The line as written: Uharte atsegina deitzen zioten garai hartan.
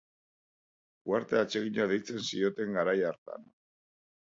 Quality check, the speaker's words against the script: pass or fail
pass